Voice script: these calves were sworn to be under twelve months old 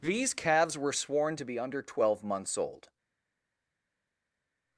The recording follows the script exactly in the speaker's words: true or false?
true